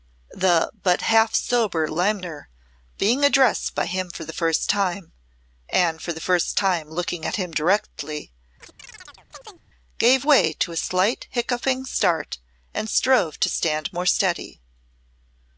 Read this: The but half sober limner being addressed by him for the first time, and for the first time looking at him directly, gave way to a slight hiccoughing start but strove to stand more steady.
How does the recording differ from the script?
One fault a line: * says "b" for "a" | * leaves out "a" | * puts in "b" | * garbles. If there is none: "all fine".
* says "and" for "but"